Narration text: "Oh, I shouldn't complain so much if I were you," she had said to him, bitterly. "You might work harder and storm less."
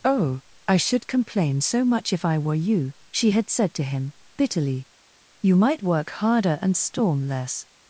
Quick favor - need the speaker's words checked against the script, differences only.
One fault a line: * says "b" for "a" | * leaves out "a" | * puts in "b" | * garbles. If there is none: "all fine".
* says "should" for "shouldn't"